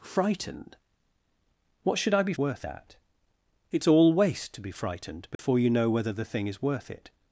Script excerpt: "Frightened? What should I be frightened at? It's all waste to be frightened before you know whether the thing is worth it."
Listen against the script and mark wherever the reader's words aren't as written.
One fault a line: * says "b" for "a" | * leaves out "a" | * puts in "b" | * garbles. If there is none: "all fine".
* says "worth" for "frightened"